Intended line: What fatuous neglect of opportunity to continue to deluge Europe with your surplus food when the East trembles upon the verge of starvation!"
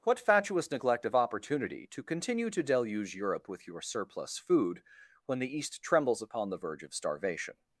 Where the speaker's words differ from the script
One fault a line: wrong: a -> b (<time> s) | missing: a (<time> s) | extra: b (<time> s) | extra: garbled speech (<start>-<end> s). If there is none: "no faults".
no faults